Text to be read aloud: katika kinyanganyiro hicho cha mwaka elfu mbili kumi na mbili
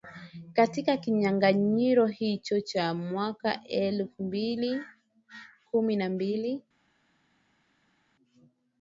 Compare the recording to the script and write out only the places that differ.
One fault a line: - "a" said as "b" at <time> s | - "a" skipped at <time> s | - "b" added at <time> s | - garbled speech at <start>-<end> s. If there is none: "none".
none